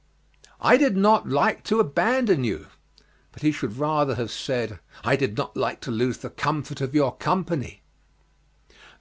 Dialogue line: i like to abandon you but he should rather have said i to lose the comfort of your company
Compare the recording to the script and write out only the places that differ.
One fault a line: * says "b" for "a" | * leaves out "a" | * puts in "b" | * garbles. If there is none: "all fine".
* puts in "did not"
* puts in "did not like"